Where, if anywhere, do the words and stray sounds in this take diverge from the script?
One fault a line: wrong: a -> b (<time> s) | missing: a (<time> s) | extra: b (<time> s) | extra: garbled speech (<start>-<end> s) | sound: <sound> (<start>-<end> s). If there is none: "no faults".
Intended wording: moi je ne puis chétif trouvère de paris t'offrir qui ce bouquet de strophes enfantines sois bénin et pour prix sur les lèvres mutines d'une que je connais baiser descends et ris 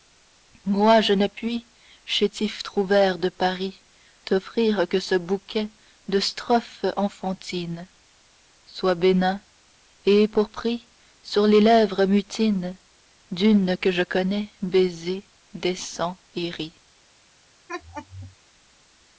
wrong: qui -> que (4.9 s)
sound: laugh (17.7-18.4 s)